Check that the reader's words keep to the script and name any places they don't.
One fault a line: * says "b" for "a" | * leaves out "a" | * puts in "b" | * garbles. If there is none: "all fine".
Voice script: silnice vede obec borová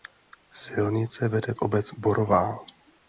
all fine